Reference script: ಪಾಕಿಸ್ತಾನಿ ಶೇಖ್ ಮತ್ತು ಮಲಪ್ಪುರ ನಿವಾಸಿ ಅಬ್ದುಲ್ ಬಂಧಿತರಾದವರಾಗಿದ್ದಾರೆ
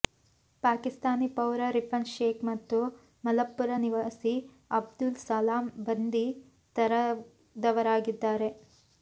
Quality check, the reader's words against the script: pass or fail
fail